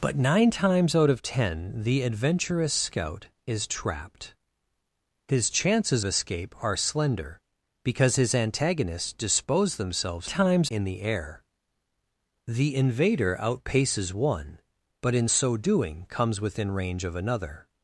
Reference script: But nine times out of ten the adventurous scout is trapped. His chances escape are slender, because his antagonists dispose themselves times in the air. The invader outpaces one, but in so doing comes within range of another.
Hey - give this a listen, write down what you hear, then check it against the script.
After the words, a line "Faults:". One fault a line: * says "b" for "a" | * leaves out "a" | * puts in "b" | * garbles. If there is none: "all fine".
But nine times out of ten the adventurous scout is trapped. His chances escape are slender, because his antagonists dispose themselves times in the air. The invader outpaces one, but in so doing comes within range of another.
Faults:
all fine